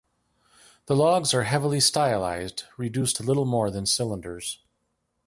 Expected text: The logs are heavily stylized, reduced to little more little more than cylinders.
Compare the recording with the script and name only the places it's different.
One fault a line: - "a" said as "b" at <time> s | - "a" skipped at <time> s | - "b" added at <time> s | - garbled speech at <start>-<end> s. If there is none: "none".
- "little more" skipped at 3.7 s